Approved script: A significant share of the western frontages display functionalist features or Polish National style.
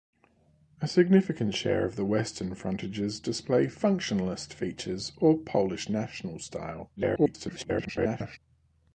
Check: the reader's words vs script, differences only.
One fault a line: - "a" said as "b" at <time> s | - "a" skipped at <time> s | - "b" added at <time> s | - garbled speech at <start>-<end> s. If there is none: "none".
- garbled speech at 7.0-8.4 s